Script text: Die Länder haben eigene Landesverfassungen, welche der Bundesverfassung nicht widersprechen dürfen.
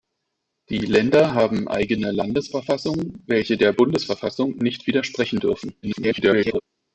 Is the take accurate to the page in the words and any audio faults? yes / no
no